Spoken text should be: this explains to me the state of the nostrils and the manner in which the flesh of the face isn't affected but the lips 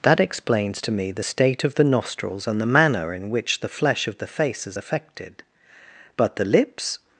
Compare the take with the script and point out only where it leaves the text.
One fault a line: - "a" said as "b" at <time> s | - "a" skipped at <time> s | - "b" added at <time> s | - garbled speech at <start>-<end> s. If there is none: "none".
- "this" said as "that" at 0.0 s
- "isn't" said as "is" at 4.7 s